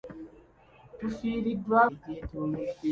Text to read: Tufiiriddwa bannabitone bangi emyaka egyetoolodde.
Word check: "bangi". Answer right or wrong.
wrong